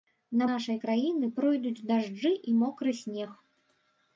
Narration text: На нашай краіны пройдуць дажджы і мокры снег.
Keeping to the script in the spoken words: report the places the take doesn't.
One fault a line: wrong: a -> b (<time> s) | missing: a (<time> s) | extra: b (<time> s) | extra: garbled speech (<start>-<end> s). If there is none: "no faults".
no faults